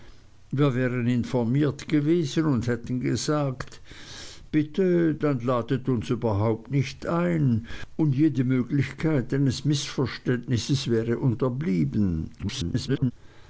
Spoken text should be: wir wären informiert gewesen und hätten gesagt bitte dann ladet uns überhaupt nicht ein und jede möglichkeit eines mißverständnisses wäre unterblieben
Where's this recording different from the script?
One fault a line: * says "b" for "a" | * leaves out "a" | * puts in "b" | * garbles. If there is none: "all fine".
* garbles